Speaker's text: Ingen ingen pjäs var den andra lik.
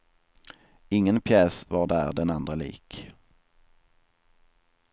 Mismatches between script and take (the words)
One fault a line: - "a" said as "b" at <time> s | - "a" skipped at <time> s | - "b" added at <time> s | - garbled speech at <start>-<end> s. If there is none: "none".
- "ingen" skipped at 1.2 s
- "där" added at 1.9 s